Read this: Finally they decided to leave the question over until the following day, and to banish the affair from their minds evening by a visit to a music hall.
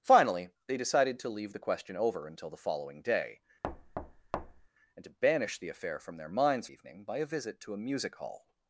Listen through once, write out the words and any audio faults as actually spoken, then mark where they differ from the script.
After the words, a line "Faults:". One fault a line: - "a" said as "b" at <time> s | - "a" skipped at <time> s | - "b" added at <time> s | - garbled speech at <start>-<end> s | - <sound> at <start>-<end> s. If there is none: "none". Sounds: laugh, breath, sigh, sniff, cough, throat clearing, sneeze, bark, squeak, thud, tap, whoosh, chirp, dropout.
Finally they decided to leave the question over until the following day, and to banish the affair from their minds evening by a visit to a music hall.
Faults:
- thud at 3.6-4.7 s